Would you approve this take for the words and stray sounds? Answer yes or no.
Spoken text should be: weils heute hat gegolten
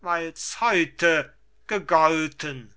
no